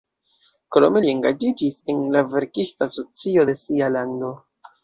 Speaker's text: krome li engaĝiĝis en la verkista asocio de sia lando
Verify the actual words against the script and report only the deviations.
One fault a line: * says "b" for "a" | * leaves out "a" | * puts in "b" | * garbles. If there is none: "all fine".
all fine